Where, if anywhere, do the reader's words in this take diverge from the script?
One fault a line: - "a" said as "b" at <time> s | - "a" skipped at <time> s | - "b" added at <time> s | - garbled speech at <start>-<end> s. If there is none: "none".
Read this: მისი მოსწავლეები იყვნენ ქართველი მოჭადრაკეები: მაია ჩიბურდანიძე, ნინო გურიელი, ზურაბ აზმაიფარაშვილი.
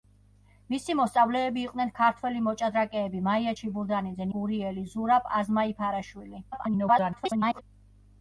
- "ნინო" skipped at 4.3 s
- garbled speech at 6.5-7.6 s